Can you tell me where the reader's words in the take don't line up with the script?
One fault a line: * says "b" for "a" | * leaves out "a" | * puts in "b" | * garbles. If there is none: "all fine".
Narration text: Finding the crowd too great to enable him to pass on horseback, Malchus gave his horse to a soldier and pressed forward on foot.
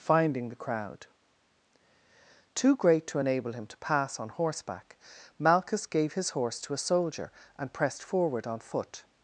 all fine